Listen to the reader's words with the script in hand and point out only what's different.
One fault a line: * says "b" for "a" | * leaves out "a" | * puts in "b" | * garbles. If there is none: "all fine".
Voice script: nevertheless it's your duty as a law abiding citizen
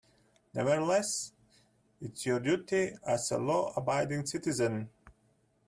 all fine